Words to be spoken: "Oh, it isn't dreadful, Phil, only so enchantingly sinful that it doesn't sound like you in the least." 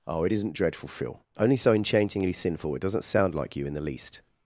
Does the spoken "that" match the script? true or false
false